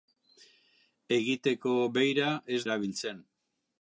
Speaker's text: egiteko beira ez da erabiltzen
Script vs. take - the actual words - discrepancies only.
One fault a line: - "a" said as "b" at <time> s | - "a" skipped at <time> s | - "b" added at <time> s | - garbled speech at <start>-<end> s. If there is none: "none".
- "da" skipped at 2.6 s